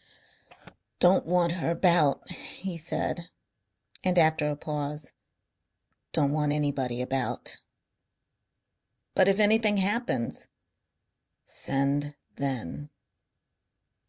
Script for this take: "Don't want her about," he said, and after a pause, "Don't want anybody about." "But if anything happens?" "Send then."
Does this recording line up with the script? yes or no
yes